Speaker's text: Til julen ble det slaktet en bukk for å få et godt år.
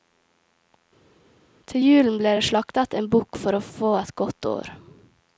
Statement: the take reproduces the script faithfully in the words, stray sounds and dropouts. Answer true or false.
true